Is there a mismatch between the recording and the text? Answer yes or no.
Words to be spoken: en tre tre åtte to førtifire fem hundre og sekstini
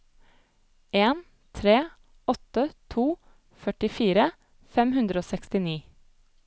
yes